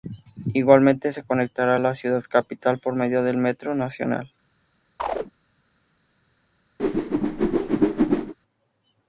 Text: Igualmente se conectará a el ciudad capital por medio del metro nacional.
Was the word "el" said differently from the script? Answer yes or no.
yes